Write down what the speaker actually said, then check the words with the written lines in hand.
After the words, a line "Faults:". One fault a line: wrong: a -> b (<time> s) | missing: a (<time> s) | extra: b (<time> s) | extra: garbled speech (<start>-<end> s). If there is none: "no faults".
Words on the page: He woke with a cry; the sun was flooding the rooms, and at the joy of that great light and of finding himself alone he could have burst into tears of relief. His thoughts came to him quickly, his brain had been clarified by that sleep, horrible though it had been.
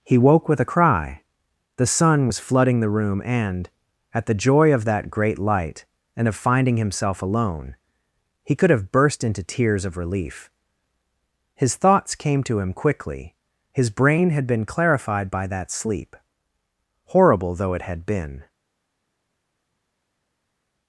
He woke with a cry; the sun was flooding the room, and at the joy of that great light and of finding himself alone he could have burst into tears of relief. His thoughts came to him quickly, his brain had been clarified by that sleep, horrible though it had been.
Faults:
wrong: rooms -> room (2.9 s)